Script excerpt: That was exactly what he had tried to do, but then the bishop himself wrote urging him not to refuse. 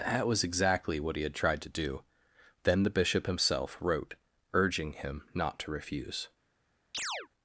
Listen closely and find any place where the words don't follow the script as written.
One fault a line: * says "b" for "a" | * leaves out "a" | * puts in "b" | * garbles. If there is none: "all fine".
* leaves out "but"